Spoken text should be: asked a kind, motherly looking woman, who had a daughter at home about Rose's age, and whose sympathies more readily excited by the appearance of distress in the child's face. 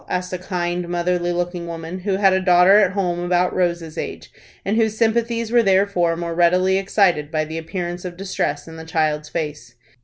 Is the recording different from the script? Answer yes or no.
yes